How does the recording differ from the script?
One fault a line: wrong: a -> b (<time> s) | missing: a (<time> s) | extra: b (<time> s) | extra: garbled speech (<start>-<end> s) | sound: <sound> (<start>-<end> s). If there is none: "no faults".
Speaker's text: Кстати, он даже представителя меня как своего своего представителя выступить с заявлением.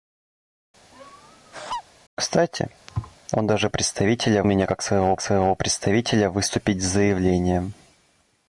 sound: laugh (0.9-1.8 s)
sound: thud (2.9-3.2 s)